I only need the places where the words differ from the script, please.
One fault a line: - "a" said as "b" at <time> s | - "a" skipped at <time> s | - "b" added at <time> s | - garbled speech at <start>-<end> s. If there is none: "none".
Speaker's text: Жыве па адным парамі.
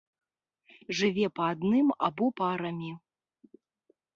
- "або" added at 2.1 s